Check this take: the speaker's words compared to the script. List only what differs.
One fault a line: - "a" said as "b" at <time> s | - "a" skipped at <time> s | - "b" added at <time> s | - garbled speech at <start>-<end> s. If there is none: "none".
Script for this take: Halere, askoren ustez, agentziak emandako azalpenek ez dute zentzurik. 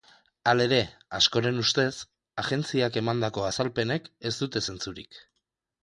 none